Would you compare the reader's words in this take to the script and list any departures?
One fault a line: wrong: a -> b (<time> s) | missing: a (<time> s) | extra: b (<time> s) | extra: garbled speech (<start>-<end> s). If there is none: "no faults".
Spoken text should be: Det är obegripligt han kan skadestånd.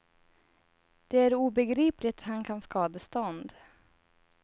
no faults